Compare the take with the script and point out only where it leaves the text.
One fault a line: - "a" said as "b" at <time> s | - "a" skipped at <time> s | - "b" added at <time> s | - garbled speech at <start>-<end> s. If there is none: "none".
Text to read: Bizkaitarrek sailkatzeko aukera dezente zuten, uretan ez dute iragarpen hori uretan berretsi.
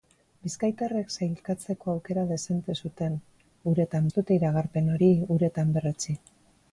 none